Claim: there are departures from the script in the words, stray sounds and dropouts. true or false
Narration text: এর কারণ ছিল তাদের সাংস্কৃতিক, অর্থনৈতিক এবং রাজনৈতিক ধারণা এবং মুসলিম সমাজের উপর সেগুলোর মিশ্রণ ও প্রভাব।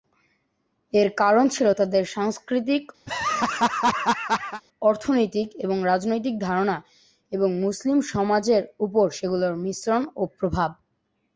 true